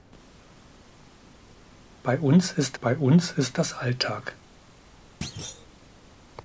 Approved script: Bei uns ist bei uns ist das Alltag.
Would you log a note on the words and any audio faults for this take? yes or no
yes